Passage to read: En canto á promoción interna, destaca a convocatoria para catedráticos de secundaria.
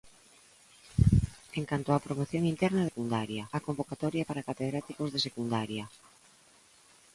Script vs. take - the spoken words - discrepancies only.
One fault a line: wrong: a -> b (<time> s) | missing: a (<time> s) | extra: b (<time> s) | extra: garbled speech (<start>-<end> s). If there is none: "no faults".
wrong: destaca -> secundaria (2.9 s)